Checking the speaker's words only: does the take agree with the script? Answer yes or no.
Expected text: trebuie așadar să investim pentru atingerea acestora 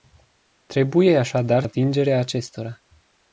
no